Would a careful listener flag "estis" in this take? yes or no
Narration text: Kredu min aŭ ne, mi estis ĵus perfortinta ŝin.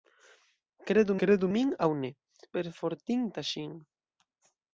yes